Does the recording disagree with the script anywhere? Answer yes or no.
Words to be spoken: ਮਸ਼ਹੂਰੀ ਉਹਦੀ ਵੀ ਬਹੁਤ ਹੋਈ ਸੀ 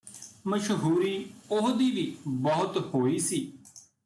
no